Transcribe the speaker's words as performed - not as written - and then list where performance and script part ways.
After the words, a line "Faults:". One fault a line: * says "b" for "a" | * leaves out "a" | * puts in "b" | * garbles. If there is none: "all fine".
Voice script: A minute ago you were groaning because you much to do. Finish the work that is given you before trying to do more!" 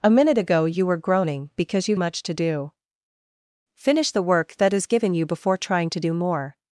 A minute ago you were groaning because you much to do. Finish the work that is given you before trying to do more!"
Faults:
all fine